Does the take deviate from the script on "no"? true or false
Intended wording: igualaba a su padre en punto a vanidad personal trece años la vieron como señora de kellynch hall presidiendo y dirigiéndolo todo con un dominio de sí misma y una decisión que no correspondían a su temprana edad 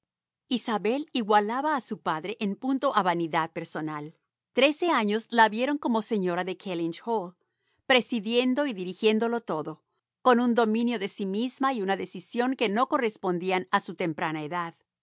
false